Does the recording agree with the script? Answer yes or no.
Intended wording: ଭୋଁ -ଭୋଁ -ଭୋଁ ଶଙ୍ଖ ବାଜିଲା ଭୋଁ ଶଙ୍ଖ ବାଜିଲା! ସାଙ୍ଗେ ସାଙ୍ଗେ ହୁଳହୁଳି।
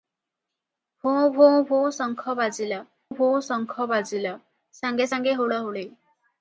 yes